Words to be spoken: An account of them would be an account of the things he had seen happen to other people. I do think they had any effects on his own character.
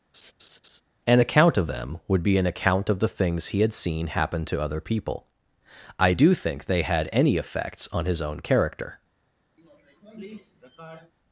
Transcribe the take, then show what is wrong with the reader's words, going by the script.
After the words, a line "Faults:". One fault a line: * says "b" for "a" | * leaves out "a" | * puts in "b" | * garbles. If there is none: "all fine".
An account of them would be an account of the things he had seen happen to other people. I do think they had any effects on his own character.
Faults:
all fine